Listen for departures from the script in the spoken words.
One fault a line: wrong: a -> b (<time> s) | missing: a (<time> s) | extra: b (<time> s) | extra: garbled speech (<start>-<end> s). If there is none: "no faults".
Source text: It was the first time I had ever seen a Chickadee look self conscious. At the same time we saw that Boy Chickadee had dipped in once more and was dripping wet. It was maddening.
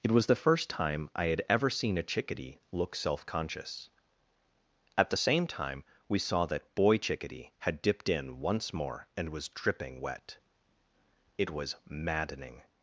no faults